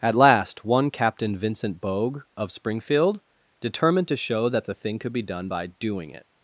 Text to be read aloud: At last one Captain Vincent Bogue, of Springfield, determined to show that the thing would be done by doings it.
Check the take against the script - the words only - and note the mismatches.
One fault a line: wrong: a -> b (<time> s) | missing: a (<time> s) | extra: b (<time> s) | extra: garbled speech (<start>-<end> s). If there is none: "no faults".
wrong: would -> could (5.0 s)
wrong: doings -> doing (5.7 s)